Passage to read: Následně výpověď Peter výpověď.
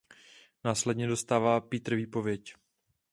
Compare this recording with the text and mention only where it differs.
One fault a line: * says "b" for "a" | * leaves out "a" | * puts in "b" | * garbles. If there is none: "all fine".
* says "dostává" for "výpověď"